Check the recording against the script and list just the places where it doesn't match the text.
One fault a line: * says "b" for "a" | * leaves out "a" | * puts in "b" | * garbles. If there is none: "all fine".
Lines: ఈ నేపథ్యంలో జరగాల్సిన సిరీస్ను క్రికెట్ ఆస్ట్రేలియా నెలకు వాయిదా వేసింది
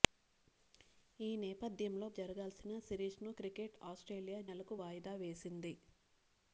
all fine